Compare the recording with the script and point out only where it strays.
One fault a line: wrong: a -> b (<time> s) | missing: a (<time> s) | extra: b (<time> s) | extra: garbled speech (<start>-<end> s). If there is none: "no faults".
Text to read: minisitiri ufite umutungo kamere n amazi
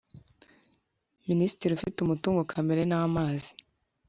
no faults